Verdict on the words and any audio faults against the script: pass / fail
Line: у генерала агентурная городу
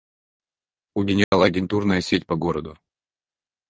fail